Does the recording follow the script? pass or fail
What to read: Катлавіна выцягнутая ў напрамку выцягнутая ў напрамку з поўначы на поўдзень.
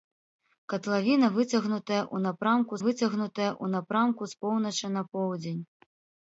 pass